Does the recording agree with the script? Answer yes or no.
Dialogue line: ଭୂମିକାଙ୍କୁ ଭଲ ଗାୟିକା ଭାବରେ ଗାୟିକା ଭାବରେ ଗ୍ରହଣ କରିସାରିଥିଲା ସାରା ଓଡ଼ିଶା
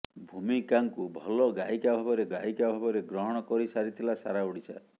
yes